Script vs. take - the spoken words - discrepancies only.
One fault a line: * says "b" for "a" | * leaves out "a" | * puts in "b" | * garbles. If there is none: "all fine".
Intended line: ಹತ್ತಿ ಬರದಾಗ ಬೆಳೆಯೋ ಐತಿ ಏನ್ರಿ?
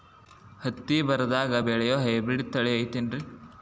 * puts in "ಹೈಬ್ರಿಡ್ ತಳಿ"